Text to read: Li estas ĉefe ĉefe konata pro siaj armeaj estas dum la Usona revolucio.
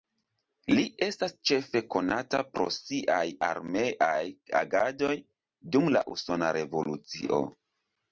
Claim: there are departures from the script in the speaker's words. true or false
true